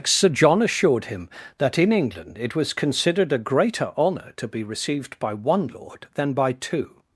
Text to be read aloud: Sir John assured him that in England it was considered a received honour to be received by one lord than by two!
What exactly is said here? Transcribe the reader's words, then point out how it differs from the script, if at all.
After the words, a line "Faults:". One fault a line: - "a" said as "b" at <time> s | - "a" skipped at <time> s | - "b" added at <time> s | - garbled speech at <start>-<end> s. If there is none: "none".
Sir John assured him that in England it was considered a greater honour to be received by one lord than by two!
Faults:
- "received" said as "greater" at 3.4 s